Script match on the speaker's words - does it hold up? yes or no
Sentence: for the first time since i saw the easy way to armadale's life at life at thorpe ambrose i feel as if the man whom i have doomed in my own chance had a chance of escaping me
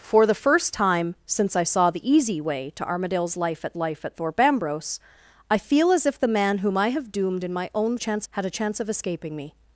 yes